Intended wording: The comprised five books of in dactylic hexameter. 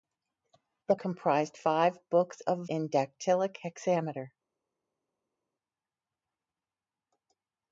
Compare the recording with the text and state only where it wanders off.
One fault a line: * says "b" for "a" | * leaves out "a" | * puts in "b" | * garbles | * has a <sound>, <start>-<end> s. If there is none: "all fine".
all fine